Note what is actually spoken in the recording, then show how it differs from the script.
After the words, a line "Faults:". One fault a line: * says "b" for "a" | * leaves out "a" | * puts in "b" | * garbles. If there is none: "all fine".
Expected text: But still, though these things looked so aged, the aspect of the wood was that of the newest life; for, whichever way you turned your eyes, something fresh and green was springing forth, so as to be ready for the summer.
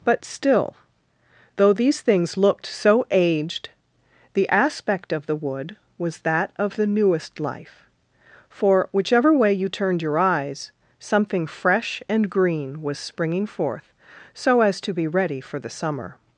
But still, though these things looked so aged, the aspect of the wood was that of the newest life; for, whichever way you turned your eyes, something fresh and green was springing forth, so as to be ready for the summer.
Faults:
all fine